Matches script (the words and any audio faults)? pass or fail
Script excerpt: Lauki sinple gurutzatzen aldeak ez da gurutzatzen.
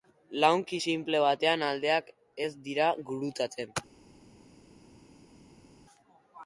fail